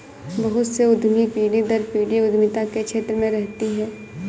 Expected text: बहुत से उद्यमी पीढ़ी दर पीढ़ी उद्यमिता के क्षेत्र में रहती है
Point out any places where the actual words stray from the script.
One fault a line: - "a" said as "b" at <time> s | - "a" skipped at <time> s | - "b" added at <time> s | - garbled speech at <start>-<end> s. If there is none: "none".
none